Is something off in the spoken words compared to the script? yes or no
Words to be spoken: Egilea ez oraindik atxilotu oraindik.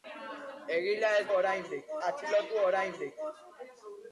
no